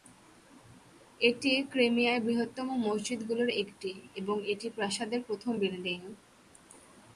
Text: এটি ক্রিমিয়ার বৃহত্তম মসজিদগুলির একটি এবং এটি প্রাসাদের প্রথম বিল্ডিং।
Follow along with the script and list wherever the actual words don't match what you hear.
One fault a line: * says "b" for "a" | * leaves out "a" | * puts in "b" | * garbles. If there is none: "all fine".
all fine